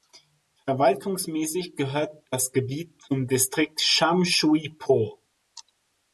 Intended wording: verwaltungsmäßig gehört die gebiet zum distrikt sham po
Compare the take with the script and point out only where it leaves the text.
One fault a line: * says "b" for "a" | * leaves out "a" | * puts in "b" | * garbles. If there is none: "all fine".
* says "das" for "die"
* puts in "shui"